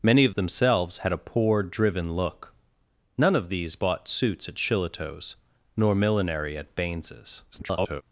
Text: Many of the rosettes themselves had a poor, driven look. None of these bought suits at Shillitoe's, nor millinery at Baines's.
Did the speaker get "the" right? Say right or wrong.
wrong